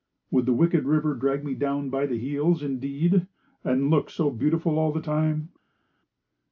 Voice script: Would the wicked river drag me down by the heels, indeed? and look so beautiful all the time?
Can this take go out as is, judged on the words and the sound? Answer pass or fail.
pass